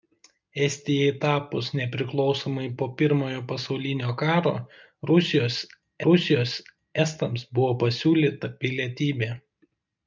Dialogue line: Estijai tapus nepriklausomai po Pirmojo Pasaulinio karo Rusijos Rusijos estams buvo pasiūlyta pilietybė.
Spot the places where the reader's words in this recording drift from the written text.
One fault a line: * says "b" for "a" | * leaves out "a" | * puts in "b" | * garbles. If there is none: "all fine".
all fine